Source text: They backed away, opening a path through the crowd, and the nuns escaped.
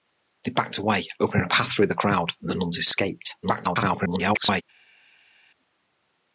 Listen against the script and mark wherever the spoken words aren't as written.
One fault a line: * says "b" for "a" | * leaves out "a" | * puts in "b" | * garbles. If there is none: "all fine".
* garbles